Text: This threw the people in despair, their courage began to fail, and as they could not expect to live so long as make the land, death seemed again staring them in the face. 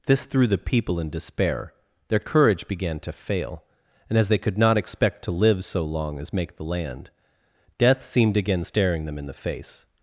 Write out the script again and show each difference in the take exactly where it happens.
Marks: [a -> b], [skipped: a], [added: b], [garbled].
This threw the people in despair, their courage began to fail, and as they could not expect to live so long as make the land, death seemed again staring them in the face.